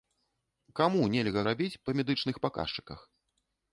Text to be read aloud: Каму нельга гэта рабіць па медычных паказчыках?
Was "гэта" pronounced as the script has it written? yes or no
no